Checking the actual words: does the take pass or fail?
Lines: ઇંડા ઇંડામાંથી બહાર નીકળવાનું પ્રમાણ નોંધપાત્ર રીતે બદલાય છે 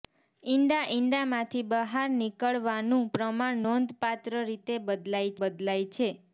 fail